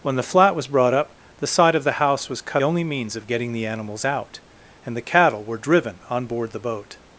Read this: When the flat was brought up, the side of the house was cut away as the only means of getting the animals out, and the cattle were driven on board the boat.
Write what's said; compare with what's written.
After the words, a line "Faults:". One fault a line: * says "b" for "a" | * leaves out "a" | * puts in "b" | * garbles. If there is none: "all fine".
When the flat was brought up, the side of the house was cut only means of getting the animals out, and the cattle were driven on board the boat.
Faults:
* leaves out "away as the"